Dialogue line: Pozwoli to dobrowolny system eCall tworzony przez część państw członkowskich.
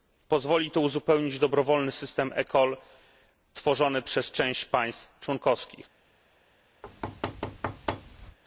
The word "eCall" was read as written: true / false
true